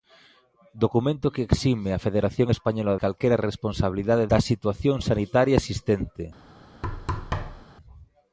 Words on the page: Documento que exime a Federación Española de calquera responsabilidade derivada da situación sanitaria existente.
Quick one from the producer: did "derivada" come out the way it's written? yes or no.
no